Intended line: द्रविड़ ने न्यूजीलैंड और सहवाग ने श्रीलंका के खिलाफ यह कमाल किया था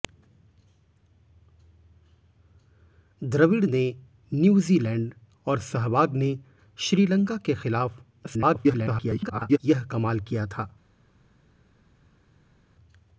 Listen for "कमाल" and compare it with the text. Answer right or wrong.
right